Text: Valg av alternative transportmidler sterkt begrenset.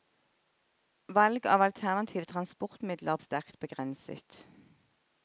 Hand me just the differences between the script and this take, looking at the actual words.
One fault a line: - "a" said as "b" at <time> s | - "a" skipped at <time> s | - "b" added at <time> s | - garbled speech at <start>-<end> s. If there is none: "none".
none